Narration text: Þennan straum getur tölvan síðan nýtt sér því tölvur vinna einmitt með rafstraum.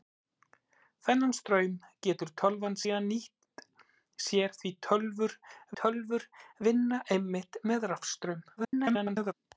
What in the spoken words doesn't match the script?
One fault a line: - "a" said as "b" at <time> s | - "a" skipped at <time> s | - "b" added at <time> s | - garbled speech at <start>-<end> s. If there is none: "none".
- "tölvur" added at 5.8 s
- garbled speech at 8.6-9.3 s